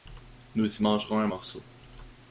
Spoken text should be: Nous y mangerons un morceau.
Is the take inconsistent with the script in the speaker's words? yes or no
no